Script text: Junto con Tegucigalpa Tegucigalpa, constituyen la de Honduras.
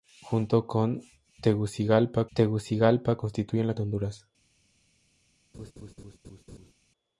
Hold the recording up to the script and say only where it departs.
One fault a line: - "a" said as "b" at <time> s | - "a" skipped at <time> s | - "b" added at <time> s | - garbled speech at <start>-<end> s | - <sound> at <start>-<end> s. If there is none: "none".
- laugh at 5.5-6.7 s